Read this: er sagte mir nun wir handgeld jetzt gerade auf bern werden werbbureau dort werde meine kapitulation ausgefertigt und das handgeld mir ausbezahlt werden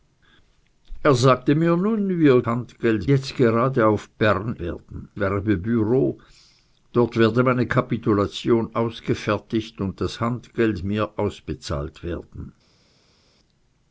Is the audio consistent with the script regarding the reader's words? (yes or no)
yes